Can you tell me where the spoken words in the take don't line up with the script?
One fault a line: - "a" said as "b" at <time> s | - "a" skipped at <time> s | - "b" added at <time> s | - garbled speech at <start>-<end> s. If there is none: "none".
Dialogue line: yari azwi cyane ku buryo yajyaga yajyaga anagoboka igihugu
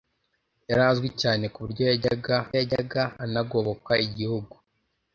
none